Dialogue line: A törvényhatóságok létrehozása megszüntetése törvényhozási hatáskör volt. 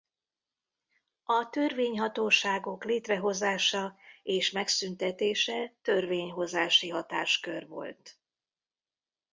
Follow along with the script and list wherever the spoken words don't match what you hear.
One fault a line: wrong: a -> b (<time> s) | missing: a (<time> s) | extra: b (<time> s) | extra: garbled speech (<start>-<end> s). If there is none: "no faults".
extra: és (4.2 s)